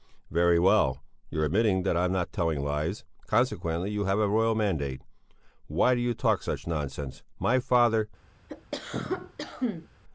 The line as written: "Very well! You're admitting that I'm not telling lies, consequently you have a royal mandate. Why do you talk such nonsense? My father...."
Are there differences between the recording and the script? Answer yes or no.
no